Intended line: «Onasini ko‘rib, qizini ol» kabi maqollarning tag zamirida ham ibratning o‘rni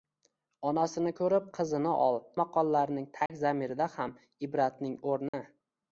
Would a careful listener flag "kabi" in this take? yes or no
yes